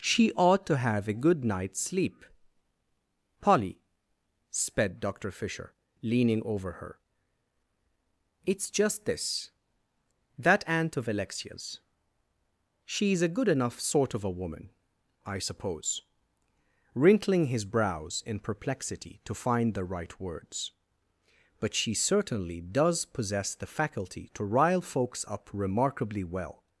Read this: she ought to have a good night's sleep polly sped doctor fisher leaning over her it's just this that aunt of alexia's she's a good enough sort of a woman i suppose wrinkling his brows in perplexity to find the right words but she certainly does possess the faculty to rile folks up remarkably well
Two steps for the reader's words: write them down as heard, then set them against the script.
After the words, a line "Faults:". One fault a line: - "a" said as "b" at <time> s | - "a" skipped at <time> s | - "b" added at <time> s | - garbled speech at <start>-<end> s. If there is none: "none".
she ought to have a good night's sleep polly sped doctor fisher leaning over her it's just this that aunt of alexia's she's a good enough sort of a woman i suppose wrinkling his brows in perplexity to find the right words but she certainly does possess the faculty to rile folks up remarkably well
Faults:
none